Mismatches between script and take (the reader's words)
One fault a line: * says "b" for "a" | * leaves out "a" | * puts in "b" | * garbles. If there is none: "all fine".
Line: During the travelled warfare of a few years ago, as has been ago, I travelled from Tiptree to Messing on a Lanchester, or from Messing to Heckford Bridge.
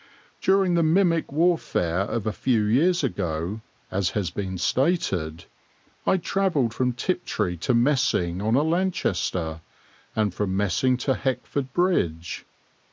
* says "mimic" for "travelled"
* says "stated" for "ago"
* says "and" for "or"